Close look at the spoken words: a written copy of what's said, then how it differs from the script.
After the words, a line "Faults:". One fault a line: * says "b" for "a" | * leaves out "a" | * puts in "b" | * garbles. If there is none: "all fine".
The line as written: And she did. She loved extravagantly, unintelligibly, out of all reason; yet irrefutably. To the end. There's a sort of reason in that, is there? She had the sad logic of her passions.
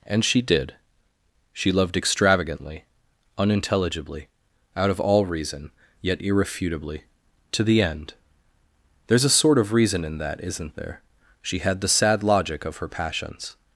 And she did. She loved extravagantly, unintelligibly, out of all reason; yet irrefutably. To the end. There's a sort of reason in that, isn't there? She had the sad logic of her passions.
Faults:
* says "isn't" for "is"